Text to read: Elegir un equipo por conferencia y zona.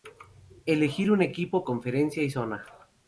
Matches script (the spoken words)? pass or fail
fail